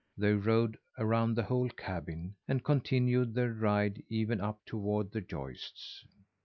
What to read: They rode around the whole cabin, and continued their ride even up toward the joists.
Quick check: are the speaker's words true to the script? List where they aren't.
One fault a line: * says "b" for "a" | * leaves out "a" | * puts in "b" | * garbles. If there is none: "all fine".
all fine